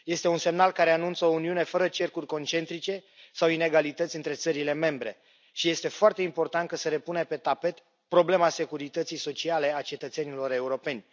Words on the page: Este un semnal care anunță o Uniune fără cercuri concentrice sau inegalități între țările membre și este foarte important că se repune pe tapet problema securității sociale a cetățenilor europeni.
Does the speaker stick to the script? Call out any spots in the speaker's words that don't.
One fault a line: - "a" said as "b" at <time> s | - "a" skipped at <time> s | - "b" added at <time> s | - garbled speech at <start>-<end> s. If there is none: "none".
none